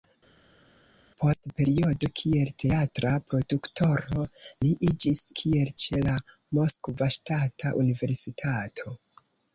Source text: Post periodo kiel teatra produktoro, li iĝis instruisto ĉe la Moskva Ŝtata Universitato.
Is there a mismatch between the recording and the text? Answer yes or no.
yes